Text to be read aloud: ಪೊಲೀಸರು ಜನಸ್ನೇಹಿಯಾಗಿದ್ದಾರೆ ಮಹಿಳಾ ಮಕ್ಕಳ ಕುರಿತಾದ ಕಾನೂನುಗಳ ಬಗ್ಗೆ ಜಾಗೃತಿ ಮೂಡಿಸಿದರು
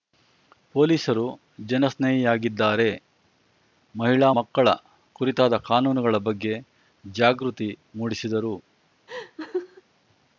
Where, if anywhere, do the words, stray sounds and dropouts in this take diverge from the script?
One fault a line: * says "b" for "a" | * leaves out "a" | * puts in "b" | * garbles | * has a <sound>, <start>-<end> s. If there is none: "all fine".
* has a laugh, 9.1-9.8 s